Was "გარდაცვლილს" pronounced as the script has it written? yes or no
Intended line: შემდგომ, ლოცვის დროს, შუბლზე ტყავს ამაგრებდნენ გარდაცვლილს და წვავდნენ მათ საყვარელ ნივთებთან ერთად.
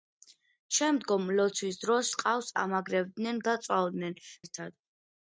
no